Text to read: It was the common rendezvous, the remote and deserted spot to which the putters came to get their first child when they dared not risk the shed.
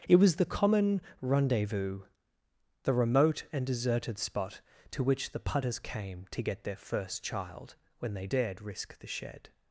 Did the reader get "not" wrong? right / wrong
wrong